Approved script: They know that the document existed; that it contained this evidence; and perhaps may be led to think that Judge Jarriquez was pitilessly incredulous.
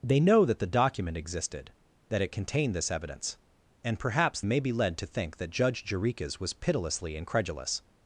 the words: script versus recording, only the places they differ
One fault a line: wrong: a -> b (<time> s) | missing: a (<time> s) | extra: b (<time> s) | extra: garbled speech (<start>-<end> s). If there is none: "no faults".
no faults